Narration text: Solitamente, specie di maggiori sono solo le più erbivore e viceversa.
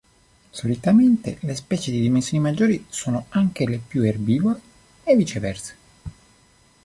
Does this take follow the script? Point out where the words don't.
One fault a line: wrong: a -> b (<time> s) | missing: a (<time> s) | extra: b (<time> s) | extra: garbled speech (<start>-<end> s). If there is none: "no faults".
extra: le (1.4 s)
extra: dimensioni (2.0 s)
wrong: solo -> anche (3.3 s)